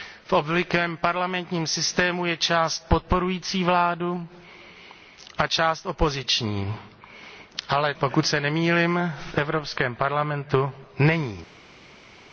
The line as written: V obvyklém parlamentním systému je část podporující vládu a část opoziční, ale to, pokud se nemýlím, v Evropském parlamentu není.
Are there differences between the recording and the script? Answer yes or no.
yes